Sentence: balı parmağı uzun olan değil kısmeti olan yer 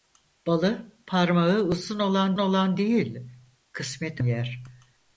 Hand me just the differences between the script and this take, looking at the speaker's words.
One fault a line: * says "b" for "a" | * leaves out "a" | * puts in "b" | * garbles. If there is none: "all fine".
* puts in "olan"
* leaves out "olan"